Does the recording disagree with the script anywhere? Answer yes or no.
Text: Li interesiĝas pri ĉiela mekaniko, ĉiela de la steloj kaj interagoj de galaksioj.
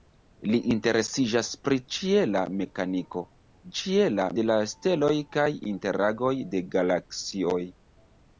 no